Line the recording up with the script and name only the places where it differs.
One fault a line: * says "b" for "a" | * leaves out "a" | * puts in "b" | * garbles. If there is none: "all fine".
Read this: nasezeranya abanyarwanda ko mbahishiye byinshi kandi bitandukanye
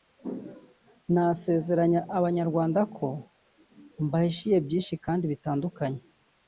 all fine